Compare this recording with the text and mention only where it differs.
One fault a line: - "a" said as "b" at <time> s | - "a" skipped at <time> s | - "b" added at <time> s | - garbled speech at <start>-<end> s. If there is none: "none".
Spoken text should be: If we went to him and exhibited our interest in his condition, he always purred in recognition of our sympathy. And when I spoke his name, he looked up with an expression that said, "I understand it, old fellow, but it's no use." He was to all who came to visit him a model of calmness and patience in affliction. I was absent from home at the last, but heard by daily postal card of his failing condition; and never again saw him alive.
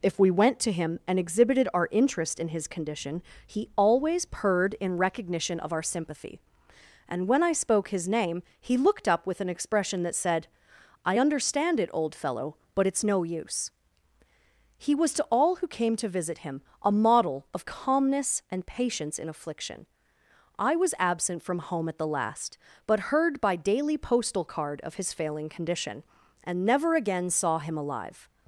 none